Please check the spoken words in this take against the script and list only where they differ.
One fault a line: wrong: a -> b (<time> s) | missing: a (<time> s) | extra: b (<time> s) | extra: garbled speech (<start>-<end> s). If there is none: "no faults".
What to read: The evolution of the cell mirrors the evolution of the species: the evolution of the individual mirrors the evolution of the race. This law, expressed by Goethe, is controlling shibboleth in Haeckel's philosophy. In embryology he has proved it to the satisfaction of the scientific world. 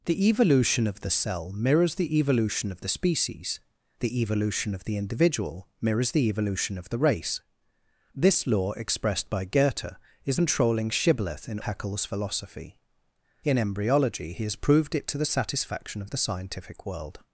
no faults